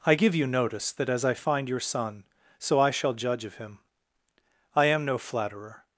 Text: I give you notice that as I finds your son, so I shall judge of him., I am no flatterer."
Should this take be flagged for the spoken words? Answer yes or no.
yes